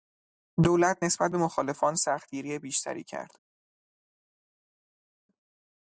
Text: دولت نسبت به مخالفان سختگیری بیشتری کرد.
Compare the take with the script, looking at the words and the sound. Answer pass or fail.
pass